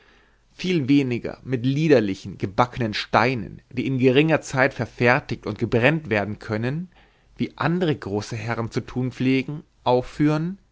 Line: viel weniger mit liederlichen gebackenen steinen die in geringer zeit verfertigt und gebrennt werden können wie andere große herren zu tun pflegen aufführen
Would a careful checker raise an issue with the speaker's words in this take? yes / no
no